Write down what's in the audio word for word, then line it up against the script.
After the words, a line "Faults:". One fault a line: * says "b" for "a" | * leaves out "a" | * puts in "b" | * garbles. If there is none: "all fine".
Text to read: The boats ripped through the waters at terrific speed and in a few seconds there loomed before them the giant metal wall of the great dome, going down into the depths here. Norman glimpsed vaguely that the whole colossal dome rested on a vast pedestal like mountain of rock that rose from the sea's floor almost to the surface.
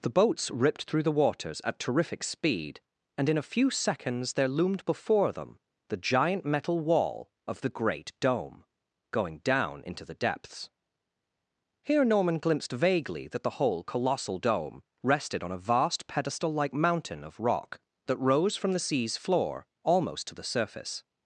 The boats ripped through the waters at terrific speed and in a few seconds there loomed before them the giant metal wall of the great dome, going down into the depths here. Norman glimpsed vaguely that the whole colossal dome rested on a vast pedestal like mountain of rock that rose from the sea's floor almost to the surface.
Faults:
all fine